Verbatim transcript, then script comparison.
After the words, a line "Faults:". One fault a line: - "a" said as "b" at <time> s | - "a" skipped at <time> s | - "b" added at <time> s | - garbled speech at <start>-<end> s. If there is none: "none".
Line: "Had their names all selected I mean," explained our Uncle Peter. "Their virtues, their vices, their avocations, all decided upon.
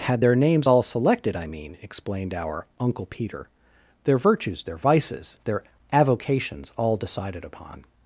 "Had their names all selected I mean," explained our Uncle Peter. "Their virtues, their vices, their avocations, all decided upon.
Faults:
none